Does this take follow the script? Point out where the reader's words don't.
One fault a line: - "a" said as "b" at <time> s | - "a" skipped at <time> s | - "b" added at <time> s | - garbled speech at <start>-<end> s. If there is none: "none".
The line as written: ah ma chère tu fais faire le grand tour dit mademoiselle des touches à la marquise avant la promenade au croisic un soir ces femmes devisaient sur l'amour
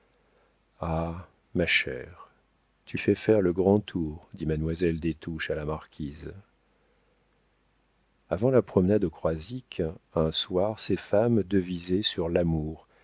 none